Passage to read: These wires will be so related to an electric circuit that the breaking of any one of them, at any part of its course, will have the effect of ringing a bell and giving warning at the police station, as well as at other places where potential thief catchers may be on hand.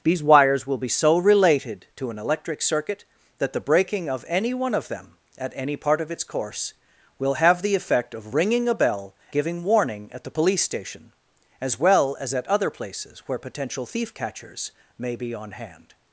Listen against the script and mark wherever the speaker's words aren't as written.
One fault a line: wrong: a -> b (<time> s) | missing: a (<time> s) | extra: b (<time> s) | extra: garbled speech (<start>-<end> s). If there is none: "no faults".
missing: and (9.1 s)